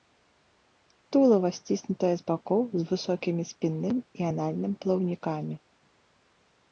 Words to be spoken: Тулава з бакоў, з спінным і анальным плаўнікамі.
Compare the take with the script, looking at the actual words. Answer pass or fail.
fail